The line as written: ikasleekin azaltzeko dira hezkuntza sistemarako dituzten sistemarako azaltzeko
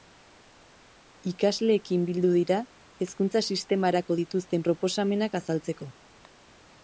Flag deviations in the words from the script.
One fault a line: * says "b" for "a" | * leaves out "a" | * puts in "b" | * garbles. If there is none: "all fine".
* says "bildu" for "azaltzeko"
* says "proposamenak" for "sistemarako"